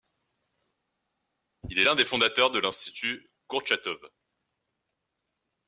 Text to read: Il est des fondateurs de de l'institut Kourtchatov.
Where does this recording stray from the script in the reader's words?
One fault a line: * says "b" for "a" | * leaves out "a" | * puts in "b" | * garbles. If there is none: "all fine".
* puts in "l'un"
* leaves out "de"